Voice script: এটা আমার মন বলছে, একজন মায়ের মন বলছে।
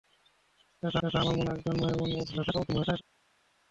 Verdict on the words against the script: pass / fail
fail